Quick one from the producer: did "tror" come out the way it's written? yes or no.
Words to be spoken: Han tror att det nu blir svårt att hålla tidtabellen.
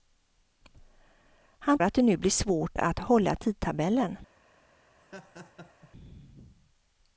no